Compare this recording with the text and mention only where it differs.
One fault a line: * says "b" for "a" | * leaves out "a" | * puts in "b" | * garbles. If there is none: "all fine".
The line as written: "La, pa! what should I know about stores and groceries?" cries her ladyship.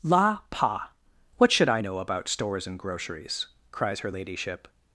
all fine